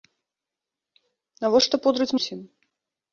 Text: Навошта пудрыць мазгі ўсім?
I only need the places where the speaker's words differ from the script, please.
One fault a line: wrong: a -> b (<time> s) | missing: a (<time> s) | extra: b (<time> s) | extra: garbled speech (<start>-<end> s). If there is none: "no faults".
missing: мазгі (2.1 s)